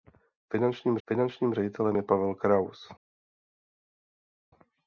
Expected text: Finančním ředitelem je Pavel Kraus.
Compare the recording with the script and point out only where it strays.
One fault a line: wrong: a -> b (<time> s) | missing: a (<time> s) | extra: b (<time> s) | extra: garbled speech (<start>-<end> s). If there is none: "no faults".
extra: finančním (1.1 s)